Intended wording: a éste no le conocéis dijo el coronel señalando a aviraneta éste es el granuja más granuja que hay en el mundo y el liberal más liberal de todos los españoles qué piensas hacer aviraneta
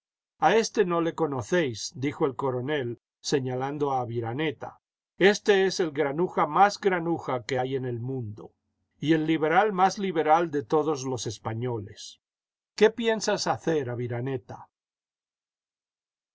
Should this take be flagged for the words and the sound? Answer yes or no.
no